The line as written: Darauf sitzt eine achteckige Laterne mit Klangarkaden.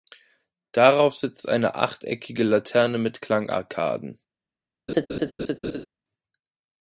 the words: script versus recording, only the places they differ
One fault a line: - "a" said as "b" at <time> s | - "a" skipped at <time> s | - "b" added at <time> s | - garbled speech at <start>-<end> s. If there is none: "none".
none